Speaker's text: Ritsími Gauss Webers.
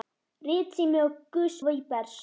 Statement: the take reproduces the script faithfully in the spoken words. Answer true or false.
true